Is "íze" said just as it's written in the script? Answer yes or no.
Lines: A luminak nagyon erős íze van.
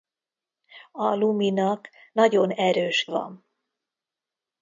no